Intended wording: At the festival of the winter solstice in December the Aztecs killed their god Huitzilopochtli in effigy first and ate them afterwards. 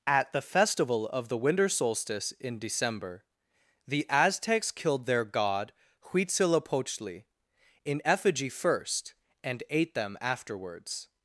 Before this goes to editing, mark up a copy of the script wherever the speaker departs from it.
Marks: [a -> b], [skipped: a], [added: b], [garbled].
At the festival of the winter solstice in December the Aztecs killed their god Huitzilopochtli in effigy first and ate them afterwards.